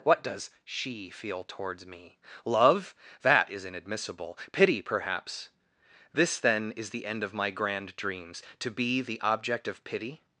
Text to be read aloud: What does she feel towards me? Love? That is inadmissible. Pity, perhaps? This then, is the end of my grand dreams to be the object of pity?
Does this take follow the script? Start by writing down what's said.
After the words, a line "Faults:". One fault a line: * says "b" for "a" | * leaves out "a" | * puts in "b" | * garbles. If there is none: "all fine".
What does she feel towards me? Love? That is inadmissible. Pity, perhaps? This then, is the end of my grand dreams to be the object of pity?
Faults:
all fine